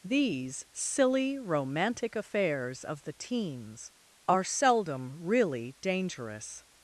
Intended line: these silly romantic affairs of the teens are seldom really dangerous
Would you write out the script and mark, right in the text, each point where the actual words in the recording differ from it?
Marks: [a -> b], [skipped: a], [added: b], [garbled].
these silly romantic affairs of the teens are seldom really dangerous